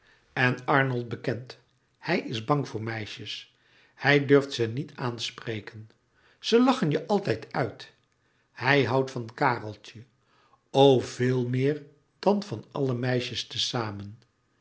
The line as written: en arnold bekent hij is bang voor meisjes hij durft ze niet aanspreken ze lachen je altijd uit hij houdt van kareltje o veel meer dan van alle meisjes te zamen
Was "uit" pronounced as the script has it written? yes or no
yes